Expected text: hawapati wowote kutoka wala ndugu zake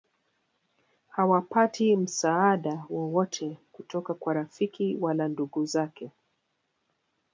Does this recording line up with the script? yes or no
no